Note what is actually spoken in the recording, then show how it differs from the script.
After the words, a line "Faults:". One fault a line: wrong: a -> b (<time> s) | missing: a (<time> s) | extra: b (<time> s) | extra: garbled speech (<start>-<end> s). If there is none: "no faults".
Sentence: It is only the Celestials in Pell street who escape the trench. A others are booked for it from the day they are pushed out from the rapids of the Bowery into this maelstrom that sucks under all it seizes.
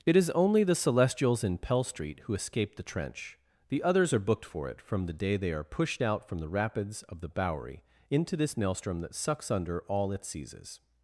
It is only the Celestials in Pell street who escape the trench. The others are booked for it from the day they are pushed out from the rapids of the Bowery into this maelstrom that sucks under all it seizes.
Faults:
wrong: A -> The (3.7 s)